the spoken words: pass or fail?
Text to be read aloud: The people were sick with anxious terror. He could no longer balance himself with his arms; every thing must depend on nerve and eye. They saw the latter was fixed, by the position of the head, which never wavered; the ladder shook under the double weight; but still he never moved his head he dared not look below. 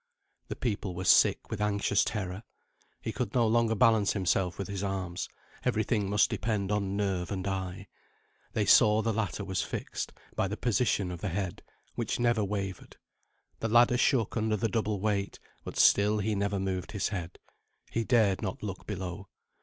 pass